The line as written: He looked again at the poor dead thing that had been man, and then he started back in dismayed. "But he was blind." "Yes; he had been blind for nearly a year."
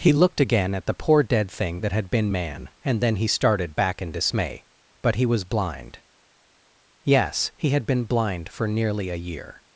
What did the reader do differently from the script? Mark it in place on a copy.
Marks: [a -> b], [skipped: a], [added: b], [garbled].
He looked again at the poor dead thing that had been man, and then he started back in [dismayed. -> dismay] "But he was blind." "Yes; he had been blind for nearly a year."